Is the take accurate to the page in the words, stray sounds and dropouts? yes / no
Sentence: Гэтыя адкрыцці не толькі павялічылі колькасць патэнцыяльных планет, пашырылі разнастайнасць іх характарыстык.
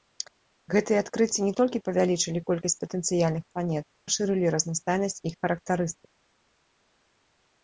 yes